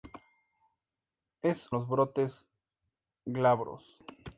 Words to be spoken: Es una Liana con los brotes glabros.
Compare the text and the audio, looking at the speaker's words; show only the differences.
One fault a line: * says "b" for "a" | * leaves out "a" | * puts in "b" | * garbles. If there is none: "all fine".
* leaves out "una Liana con"